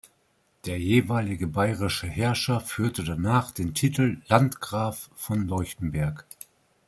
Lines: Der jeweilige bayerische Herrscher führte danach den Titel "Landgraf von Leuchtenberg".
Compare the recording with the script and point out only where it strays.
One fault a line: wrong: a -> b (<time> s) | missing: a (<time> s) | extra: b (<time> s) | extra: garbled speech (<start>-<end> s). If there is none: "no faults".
no faults